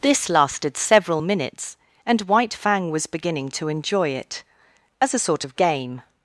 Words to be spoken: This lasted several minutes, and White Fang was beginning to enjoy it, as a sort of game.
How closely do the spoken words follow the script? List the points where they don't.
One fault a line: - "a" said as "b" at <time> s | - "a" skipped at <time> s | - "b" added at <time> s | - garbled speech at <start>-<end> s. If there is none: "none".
none